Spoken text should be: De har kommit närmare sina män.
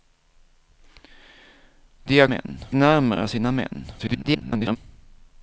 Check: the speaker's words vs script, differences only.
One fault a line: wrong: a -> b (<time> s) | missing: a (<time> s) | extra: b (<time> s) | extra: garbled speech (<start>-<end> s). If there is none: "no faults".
wrong: kommit -> män (2.2 s)
extra: garbled speech (4.0-4.8 s)